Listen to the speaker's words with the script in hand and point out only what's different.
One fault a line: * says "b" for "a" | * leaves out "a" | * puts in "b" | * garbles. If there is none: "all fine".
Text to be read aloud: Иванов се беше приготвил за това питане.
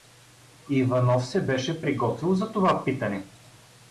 all fine